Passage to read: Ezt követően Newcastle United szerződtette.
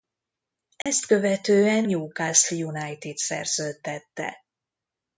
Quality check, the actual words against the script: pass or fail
pass